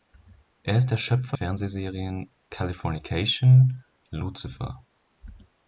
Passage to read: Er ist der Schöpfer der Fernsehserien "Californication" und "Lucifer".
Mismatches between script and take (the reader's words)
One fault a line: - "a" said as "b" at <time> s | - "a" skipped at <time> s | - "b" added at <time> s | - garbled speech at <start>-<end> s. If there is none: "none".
- "der" skipped at 1.4 s
- "und" skipped at 3.8 s